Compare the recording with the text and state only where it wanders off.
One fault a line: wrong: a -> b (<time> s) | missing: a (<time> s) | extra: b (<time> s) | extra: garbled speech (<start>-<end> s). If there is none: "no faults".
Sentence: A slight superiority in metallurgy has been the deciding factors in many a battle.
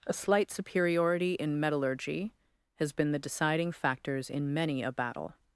no faults